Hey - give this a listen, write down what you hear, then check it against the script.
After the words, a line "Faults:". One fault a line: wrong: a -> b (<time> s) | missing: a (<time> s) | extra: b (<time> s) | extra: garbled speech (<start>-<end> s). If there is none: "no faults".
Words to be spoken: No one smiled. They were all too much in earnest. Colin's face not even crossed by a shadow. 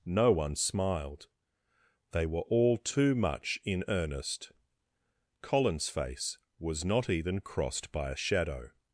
No one smiled. They were all too much in earnest. Colin's face was not even crossed by a shadow.
Faults:
extra: was (6.6 s)